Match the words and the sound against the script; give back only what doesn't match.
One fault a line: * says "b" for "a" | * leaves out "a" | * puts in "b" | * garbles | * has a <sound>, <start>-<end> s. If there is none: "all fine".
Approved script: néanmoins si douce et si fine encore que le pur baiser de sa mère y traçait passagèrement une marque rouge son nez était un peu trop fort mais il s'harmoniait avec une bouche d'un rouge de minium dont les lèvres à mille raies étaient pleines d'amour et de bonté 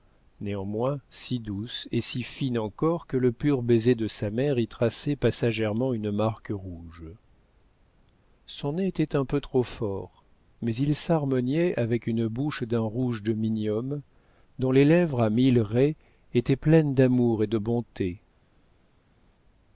all fine